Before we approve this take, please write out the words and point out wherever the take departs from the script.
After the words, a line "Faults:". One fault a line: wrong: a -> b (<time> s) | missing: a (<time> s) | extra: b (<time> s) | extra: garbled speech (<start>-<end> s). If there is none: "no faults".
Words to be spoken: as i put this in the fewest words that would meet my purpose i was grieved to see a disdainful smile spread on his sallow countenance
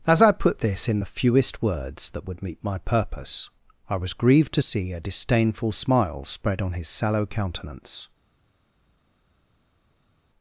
as i put this in the fewest words that would meet my purpose i was grieved to see a disdainful smile spread on his sallow countenance
Faults:
no faults